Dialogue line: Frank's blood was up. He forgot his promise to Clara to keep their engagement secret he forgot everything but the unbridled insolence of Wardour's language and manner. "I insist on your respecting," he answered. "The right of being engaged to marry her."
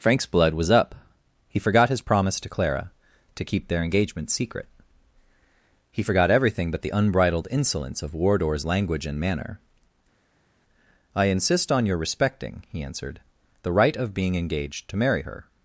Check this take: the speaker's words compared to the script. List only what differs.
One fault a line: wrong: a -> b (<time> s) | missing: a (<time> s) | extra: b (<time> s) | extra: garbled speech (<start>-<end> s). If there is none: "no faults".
no faults